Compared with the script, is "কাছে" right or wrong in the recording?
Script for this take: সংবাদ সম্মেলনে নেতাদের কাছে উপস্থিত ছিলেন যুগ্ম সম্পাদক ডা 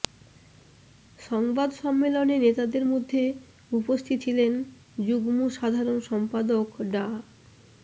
wrong